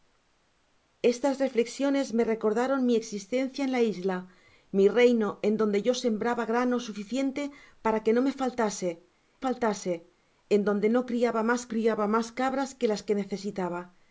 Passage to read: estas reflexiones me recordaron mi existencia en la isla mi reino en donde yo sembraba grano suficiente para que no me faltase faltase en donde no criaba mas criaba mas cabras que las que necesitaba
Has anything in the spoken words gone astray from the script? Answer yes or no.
no